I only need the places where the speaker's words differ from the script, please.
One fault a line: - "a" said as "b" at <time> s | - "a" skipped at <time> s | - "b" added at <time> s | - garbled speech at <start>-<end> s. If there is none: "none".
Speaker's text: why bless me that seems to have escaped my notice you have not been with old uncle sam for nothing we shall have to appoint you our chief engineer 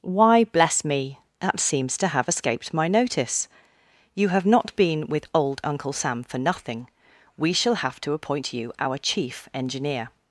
none